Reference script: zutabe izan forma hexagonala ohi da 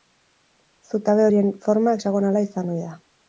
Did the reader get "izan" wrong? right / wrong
wrong